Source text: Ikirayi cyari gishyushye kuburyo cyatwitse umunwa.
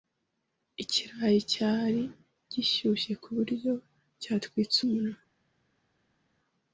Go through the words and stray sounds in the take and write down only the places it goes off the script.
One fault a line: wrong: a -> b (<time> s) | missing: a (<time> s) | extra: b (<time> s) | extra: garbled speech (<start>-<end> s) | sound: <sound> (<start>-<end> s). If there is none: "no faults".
no faults